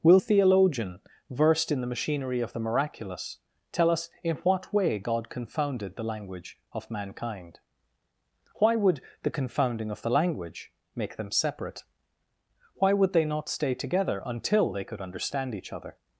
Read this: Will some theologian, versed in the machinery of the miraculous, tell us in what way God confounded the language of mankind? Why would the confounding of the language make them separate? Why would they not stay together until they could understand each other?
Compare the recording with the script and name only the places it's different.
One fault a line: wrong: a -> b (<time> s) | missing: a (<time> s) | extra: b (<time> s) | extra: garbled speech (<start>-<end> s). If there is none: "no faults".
missing: some (0.2 s)